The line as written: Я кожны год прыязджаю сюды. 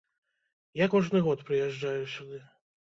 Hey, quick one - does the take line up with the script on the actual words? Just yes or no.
yes